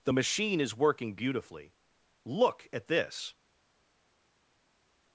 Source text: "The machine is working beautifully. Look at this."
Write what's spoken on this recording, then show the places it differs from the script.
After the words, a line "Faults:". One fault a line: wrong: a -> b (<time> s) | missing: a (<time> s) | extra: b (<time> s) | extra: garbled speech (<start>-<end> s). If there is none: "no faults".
"The machine is working beautifully. Look at this."
Faults:
no faults